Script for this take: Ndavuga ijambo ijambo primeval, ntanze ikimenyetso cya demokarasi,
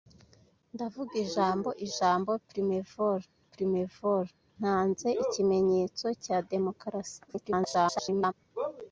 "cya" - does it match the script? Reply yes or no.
yes